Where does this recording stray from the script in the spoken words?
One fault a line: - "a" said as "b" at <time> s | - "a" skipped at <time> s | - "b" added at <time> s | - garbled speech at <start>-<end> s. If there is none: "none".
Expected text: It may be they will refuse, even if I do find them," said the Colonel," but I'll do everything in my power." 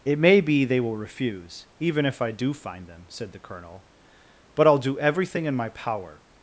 none